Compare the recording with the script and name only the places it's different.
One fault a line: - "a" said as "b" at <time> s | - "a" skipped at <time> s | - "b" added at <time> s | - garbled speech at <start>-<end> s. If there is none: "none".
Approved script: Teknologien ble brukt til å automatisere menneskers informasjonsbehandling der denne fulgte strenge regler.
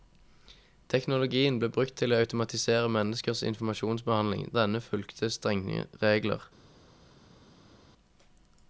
- "der" skipped at 4.5 s